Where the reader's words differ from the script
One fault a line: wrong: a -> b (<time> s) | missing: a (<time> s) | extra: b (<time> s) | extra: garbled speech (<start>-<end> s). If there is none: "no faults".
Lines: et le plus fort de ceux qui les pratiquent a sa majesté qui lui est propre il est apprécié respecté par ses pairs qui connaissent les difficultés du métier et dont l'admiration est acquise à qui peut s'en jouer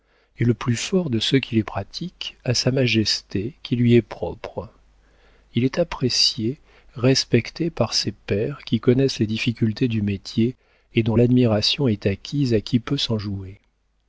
no faults